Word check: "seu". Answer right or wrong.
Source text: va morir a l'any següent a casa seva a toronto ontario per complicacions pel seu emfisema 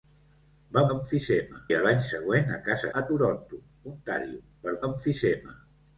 wrong